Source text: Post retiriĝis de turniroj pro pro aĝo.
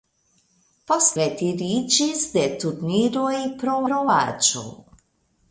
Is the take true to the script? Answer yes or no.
yes